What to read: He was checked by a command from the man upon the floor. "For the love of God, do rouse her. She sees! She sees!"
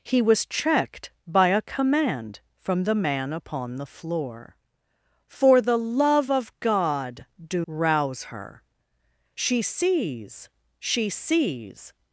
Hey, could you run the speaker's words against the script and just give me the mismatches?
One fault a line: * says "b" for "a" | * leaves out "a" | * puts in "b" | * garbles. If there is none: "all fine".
all fine